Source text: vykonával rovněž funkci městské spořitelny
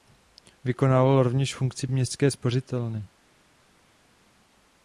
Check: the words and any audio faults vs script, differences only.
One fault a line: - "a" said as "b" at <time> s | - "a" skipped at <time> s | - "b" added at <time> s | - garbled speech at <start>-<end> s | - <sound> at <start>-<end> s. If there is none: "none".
none